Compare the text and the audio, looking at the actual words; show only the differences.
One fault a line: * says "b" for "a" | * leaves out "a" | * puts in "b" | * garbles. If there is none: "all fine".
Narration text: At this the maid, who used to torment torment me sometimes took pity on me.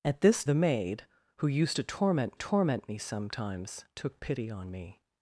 all fine